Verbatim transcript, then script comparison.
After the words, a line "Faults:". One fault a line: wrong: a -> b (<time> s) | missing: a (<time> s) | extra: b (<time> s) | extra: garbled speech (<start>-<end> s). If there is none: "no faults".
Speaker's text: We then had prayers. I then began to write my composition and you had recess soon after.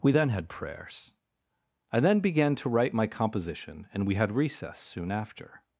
We then had prayers. I then began to write my composition and we had recess soon after.
Faults:
wrong: you -> we (4.1 s)